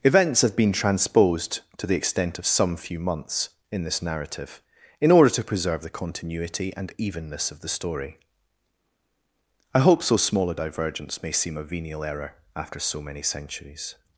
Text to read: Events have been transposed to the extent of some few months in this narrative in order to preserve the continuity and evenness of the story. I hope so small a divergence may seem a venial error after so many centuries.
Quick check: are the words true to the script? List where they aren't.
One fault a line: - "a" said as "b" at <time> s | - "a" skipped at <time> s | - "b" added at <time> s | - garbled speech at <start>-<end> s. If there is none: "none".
none